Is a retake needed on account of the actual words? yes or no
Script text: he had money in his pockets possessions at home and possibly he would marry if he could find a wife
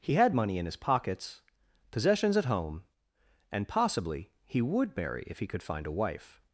no